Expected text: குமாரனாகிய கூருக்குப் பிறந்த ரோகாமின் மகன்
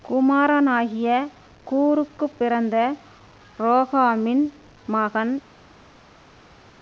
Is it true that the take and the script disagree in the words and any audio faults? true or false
false